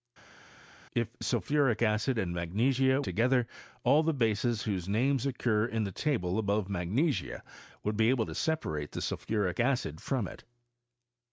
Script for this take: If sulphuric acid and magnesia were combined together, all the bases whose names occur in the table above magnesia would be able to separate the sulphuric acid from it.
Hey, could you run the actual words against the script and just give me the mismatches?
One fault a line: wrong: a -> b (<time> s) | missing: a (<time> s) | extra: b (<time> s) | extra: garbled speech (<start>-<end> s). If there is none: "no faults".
missing: were combined (3.0 s)